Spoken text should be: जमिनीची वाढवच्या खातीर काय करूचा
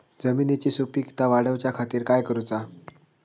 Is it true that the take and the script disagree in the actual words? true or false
true